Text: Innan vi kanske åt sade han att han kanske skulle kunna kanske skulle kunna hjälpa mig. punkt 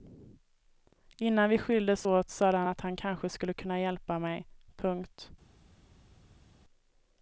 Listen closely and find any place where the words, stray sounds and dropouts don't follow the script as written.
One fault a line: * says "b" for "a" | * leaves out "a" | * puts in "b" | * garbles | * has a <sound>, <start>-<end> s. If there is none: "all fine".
* says "skildes" for "kanske"
* leaves out "kanske skulle kunna"